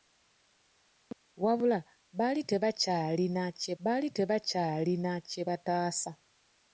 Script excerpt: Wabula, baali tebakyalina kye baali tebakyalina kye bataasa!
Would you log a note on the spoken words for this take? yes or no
no